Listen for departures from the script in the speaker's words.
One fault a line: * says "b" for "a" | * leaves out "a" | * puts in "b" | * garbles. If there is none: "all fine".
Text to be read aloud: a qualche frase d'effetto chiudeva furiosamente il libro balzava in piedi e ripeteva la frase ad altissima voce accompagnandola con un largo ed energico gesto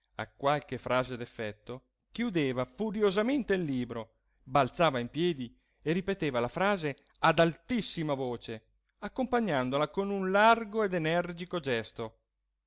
all fine